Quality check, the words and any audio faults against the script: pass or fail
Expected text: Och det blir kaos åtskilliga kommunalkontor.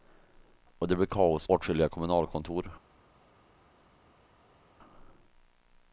pass